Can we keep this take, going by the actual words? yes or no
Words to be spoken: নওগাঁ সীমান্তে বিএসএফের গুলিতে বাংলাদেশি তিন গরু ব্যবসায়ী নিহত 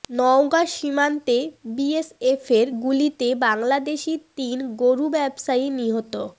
yes